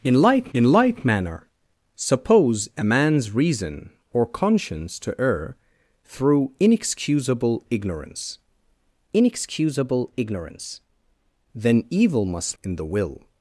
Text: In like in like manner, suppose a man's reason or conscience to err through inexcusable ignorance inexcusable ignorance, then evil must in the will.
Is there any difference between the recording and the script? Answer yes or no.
no